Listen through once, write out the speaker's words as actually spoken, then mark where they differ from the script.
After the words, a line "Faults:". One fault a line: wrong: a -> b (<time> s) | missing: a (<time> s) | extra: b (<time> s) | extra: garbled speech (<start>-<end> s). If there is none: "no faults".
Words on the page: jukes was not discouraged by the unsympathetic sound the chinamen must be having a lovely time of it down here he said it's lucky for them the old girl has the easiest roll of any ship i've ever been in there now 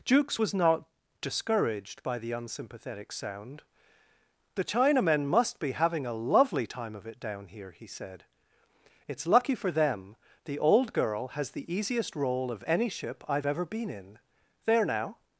jukes was not discouraged by the unsympathetic sound the chinamen must be having a lovely time of it down here he said it's lucky for them the old girl has the easiest roll of any ship i've ever been in there now
Faults:
no faults